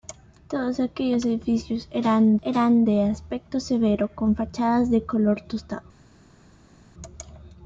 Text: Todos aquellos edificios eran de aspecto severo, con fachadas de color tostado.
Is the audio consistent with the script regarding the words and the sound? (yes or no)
no